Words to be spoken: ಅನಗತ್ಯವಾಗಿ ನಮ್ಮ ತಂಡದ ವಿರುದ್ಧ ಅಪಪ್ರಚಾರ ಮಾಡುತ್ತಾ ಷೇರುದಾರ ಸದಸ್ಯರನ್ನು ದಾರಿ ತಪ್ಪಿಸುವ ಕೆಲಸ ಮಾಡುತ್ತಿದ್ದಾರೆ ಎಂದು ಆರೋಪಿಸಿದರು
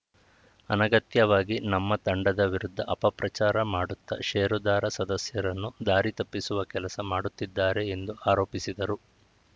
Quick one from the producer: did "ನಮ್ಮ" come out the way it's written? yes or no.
yes